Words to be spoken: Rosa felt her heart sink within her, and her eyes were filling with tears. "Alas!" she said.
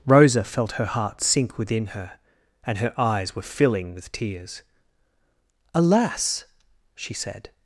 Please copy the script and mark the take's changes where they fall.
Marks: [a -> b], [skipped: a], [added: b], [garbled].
Rosa felt her heart sink within her, and her eyes were filling with tears. "Alas!" she said.